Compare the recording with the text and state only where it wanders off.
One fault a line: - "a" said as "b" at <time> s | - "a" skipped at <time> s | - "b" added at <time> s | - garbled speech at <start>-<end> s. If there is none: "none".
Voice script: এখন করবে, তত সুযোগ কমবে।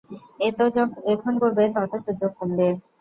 none